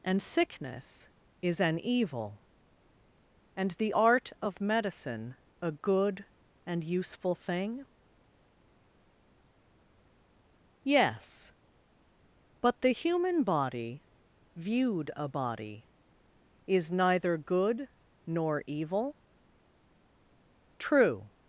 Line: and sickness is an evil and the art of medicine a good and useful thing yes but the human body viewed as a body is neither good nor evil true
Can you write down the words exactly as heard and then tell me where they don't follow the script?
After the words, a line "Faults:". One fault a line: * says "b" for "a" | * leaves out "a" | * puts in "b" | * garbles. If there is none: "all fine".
and sickness is an evil and the art of medicine a good and useful thing yes but the human body viewed a body is neither good nor evil true
Faults:
* leaves out "as"